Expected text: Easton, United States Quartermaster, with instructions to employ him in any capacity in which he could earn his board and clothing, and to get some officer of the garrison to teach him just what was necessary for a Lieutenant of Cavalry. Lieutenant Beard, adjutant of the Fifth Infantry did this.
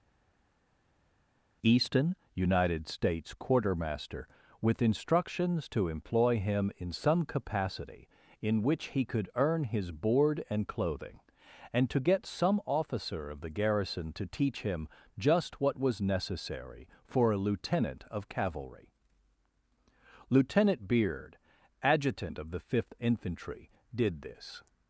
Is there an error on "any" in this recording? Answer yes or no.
yes